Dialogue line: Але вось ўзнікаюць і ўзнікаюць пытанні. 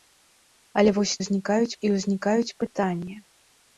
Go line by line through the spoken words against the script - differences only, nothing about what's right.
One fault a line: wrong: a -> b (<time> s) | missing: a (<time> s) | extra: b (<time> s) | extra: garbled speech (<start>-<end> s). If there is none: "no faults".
no faults